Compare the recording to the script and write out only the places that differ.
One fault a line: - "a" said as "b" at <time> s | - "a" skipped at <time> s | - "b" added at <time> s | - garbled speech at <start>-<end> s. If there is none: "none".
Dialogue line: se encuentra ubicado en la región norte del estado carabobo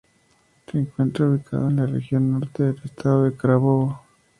none